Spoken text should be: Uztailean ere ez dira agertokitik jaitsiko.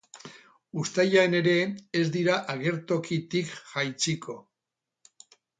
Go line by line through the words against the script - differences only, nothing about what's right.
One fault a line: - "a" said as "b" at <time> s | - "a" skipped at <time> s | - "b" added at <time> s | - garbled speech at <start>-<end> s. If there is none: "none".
none